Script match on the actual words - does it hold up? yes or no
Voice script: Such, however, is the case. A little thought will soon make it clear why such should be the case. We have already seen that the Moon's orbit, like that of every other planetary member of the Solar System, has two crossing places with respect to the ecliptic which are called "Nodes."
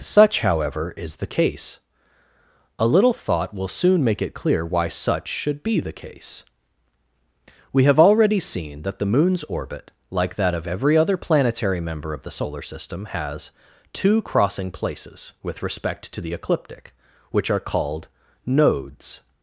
yes